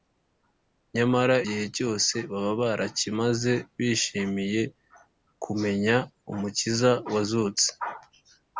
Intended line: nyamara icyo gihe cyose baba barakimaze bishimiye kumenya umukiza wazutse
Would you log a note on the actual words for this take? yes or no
yes